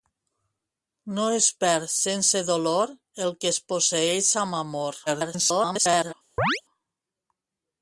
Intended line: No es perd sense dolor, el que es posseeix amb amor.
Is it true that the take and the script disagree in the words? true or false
true